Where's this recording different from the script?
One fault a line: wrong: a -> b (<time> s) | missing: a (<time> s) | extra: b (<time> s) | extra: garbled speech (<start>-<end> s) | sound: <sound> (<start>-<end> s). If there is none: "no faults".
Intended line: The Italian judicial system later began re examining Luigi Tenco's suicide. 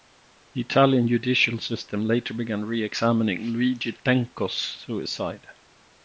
no faults